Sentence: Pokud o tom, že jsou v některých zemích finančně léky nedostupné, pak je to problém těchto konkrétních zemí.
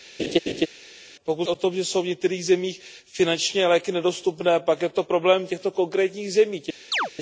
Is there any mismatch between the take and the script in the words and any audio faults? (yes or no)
yes